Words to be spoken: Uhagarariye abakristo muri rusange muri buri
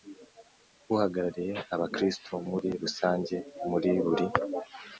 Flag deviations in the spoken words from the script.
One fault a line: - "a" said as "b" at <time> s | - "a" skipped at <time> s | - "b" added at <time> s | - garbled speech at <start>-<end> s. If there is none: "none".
none